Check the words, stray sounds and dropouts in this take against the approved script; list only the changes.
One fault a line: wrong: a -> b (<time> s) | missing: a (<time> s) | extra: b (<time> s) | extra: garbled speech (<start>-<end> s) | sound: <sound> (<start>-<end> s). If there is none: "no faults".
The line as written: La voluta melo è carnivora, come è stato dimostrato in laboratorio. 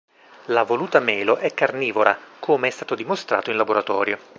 no faults